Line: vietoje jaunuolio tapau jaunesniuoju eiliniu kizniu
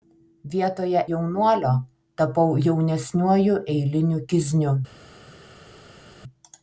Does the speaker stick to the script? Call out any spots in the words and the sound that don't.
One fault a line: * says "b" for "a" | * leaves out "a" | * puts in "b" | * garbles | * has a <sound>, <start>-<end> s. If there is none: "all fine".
all fine